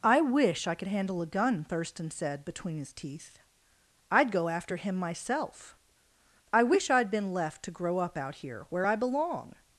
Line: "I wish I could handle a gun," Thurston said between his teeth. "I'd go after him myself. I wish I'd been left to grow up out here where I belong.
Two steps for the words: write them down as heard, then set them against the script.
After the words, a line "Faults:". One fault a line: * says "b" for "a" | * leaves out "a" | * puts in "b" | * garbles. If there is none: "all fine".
"I wish I could handle a gun," Thurston said between his teeth. "I'd go after him myself. I wish I'd been left to grow up out here where I belong.
Faults:
all fine